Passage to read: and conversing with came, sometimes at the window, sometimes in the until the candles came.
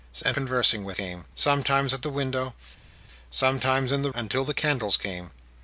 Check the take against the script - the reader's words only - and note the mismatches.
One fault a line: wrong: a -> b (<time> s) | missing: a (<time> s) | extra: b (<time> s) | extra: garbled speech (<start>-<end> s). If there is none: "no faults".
no faults